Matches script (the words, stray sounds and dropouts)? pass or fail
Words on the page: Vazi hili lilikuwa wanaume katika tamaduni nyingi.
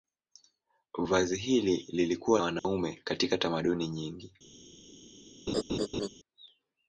fail